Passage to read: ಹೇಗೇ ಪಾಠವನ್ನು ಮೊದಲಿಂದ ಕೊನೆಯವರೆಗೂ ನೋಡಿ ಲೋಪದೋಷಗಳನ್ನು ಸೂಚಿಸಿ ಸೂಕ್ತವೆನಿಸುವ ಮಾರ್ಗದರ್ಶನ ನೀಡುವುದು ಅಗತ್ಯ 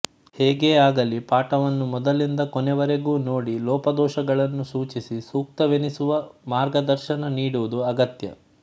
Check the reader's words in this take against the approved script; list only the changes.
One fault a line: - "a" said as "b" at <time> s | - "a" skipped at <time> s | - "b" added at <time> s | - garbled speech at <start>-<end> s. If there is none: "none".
- "ಆಗಲಿ" added at 0.8 s